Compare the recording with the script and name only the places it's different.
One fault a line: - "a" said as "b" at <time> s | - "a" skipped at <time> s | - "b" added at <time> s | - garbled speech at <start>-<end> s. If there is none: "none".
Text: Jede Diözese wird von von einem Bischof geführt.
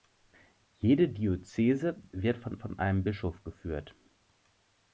none